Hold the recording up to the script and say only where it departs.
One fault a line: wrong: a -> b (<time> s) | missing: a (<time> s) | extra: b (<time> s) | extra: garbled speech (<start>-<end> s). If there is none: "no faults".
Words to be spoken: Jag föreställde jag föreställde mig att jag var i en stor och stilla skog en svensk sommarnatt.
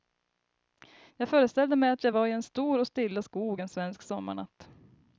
missing: jag föreställde (1.8 s)